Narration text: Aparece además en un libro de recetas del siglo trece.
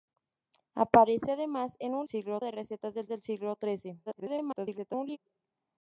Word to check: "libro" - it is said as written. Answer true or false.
false